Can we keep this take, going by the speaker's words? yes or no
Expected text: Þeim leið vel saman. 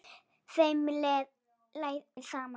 yes